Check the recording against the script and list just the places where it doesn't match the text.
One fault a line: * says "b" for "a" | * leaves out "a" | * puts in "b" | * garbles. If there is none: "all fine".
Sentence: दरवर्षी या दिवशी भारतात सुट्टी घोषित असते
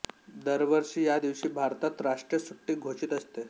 * puts in "राष्ट्रीय"